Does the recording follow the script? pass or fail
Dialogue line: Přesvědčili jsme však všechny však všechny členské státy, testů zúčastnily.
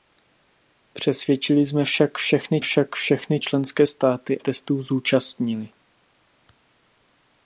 pass